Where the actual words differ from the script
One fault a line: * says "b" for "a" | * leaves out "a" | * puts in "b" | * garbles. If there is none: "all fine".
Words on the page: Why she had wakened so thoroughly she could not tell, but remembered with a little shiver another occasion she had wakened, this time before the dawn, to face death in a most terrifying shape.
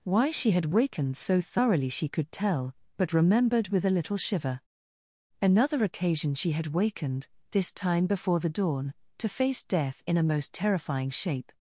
* leaves out "not"